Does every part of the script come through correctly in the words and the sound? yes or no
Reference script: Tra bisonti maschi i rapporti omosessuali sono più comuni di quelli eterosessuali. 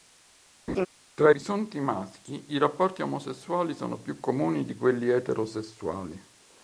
no